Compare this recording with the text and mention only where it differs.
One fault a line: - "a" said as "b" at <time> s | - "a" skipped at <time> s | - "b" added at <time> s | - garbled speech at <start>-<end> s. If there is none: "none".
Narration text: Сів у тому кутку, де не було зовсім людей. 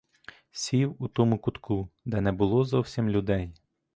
none